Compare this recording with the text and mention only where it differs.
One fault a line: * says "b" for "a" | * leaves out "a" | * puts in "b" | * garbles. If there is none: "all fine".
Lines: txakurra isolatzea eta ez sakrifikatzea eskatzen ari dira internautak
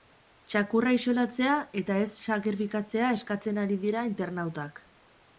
all fine